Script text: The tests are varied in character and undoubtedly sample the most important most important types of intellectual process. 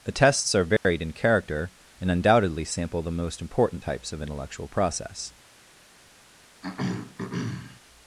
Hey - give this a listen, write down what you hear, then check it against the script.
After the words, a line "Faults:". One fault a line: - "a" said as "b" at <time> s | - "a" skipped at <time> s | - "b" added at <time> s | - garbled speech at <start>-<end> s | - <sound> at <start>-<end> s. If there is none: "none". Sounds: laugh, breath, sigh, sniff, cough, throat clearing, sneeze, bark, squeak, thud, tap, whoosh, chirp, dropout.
The tests are varied in character and undoubtedly sample the most important types of intellectual process.
Faults:
- dropout at 0.8-0.8 s
- "most important" skipped at 3.8 s
- throat clearing at 6.6-7.8 s